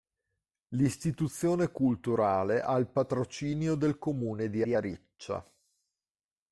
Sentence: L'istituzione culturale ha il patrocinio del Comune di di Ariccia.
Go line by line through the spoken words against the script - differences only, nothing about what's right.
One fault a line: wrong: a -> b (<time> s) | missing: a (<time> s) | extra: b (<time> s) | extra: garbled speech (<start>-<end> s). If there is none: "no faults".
no faults